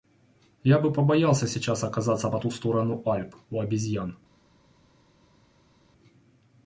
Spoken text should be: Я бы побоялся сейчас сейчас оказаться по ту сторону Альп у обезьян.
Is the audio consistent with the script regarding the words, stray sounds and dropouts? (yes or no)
no